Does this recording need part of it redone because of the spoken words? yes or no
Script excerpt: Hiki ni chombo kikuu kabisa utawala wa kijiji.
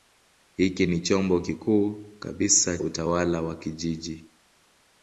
no